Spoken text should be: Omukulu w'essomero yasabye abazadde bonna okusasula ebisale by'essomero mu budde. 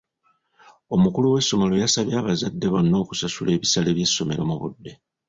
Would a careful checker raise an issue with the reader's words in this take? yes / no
no